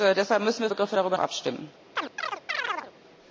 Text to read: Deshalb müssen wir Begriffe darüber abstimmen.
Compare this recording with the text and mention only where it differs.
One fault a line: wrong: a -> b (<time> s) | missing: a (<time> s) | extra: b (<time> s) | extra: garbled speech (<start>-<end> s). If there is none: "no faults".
no faults